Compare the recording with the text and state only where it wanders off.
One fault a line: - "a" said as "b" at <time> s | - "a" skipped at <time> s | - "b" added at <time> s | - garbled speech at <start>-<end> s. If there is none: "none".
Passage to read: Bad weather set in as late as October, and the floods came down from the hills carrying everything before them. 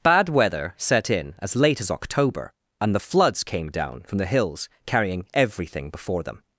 none